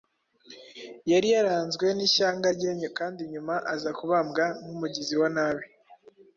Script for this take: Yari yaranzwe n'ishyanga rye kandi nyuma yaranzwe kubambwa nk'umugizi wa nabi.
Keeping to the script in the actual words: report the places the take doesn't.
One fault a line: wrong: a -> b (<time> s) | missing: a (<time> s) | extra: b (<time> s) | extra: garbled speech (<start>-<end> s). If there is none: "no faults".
wrong: yaranzwe -> aza (3.7 s)